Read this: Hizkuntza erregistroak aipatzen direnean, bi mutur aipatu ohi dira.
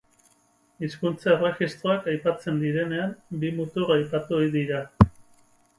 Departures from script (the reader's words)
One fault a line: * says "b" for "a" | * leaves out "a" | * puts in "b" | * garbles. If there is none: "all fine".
all fine